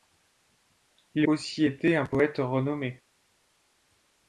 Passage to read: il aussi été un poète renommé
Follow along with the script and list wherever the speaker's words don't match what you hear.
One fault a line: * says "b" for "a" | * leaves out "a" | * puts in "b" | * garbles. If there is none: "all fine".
all fine